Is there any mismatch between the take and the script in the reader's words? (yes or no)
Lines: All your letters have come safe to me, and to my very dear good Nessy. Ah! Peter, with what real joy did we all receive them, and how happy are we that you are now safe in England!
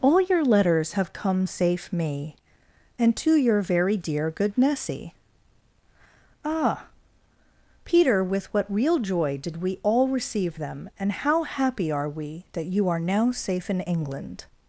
yes